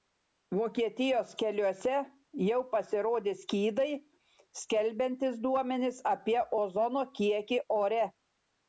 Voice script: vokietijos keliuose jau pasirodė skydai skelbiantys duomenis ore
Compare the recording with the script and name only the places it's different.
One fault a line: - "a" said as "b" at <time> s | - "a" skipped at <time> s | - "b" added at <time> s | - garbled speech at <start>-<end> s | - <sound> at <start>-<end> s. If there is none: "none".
- "apie ozono kiekį" added at 6.2 s